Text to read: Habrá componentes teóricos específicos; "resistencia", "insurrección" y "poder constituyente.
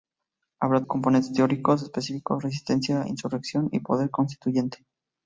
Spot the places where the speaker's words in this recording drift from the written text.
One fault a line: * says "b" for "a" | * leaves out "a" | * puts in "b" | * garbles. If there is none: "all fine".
all fine